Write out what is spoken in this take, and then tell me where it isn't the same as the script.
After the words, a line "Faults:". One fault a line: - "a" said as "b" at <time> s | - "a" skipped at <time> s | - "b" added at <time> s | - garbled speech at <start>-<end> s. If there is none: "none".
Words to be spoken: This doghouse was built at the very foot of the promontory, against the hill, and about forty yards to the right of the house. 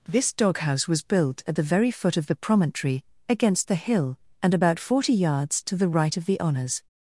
This doghouse was built at the very foot of the promontory, against the hill, and about forty yards to the right of the honors.
Faults:
- "house" said as "honors" at 6.4 s